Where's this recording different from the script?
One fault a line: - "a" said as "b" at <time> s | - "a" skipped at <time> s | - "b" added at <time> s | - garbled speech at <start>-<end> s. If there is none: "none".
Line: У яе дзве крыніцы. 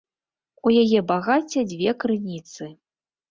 - "багацця" added at 1.1 s